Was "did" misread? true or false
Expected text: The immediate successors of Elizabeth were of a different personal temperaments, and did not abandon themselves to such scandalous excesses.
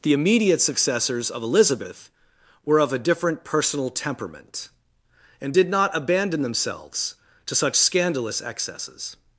false